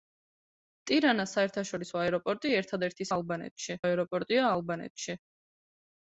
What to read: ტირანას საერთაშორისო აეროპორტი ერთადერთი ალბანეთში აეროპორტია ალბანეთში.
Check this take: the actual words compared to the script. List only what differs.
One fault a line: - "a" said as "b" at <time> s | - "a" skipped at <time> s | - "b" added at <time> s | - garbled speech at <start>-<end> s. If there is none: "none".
none